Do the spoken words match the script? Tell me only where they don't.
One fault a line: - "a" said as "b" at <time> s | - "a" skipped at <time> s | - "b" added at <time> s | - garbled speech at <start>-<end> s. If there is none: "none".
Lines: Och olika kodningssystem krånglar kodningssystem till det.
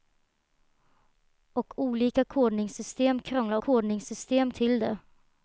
none